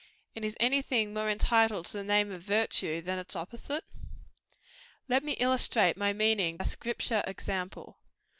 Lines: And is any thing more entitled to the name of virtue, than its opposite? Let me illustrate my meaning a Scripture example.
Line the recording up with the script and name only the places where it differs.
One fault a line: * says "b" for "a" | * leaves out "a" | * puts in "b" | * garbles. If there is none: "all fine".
all fine